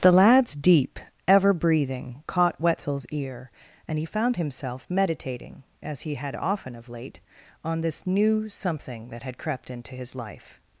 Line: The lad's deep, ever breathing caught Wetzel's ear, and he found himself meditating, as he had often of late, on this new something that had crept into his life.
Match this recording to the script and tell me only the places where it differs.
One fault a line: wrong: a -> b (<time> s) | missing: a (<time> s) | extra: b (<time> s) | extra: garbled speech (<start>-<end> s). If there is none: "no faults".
no faults